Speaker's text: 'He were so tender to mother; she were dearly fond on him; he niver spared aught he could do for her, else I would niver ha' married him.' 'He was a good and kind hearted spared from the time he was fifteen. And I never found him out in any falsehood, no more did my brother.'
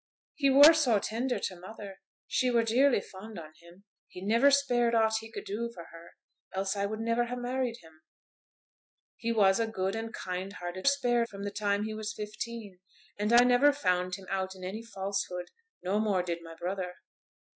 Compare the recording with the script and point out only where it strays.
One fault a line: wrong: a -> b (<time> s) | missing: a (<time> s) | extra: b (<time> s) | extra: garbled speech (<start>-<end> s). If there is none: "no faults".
no faults